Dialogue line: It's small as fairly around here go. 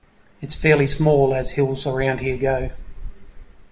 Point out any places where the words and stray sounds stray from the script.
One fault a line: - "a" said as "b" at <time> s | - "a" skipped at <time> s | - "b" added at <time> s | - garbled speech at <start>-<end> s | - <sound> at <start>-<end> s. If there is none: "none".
- "fairly" added at 0.6 s
- "fairly" said as "hills" at 1.5 s